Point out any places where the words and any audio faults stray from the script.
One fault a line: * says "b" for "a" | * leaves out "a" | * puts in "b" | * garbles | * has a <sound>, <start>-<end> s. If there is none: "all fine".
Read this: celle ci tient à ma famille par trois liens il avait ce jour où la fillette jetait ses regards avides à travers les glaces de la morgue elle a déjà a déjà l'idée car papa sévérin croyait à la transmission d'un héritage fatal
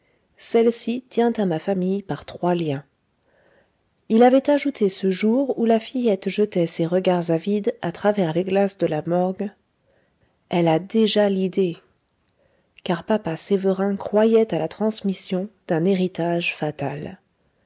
* puts in "ajouté"
* leaves out "a déjà"